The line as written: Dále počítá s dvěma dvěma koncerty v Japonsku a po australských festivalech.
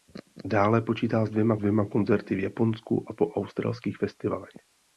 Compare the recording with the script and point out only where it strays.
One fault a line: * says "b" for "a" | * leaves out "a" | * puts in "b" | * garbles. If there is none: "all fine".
all fine